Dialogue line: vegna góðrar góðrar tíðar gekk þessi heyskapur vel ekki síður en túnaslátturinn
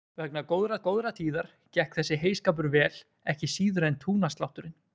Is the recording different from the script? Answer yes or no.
no